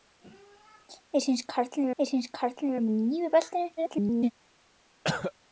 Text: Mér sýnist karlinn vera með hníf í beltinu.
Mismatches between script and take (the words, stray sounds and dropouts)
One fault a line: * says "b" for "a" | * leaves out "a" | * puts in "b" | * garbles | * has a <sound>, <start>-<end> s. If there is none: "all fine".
* puts in "mér sýnist karlinn"
* garbles
* has a cough, 5.0-5.3 s